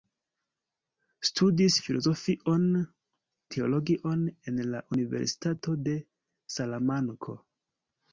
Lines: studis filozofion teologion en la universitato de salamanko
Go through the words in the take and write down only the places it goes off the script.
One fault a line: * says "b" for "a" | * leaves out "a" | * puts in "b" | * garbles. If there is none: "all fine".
all fine